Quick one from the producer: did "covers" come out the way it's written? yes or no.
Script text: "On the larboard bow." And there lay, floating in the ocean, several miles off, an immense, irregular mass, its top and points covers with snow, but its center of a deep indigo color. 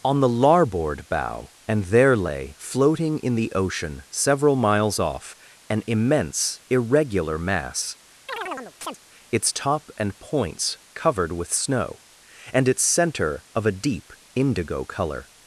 no